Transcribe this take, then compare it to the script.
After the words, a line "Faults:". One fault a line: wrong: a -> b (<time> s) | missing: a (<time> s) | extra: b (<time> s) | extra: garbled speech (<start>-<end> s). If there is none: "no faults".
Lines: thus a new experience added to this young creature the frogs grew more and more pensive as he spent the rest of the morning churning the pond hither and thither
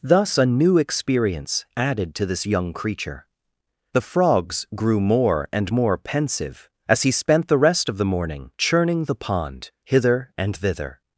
thus a new experience added to this young creature the frogs grew more and more pensive as he spent the rest of the morning churning the pond hither and thither
Faults:
no faults